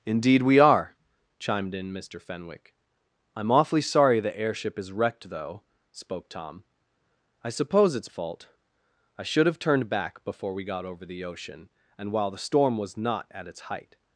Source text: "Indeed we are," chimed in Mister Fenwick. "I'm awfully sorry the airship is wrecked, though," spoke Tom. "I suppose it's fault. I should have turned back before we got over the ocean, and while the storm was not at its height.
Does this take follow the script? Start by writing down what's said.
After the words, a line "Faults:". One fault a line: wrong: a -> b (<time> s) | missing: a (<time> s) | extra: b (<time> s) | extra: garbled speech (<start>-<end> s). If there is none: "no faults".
"Indeed we are," chimed in Mister Fenwick. "I'm awfully sorry the airship is wrecked, though," spoke Tom. "I suppose it's fault. I should have turned back before we got over the ocean, and while the storm was not at its height.
Faults:
no faults